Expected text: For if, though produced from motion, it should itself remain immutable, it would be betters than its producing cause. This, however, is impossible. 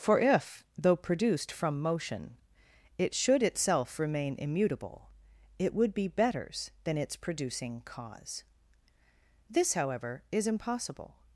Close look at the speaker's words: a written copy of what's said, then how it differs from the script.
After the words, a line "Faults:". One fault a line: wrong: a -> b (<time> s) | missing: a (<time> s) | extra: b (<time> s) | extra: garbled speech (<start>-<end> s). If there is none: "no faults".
For if, though produced from motion, it should itself remain immutable, it would be betters than its producing cause. This, however, is impossible.
Faults:
no faults